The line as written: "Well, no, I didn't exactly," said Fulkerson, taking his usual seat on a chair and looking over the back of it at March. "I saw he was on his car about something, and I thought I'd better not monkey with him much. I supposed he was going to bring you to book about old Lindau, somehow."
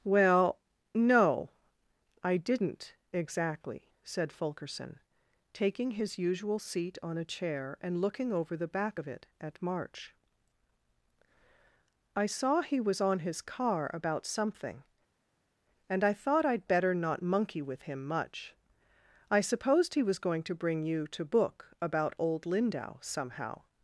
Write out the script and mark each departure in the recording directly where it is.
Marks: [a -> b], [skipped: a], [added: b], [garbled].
"Well, no, I didn't exactly," said Fulkerson, taking his usual seat on a chair and looking over the back of it at March. "I saw he was on his car about something, and I thought I'd better not monkey with him much. I supposed he was going to bring you to book about old Lindau, somehow."